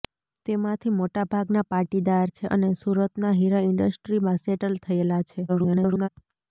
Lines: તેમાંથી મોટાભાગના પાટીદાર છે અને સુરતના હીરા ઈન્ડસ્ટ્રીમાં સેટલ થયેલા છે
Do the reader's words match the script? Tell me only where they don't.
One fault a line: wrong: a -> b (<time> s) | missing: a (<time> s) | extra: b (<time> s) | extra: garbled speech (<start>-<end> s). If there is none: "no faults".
extra: garbled speech (5.5-6.1 s)